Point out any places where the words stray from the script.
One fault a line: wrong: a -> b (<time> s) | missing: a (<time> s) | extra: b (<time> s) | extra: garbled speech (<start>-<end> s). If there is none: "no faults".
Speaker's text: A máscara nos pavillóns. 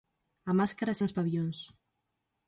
no faults